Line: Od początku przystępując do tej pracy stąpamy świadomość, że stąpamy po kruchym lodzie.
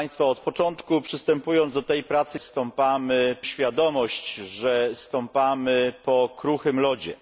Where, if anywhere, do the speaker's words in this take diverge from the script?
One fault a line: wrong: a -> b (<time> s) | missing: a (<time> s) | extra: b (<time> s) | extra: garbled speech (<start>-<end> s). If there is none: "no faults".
no faults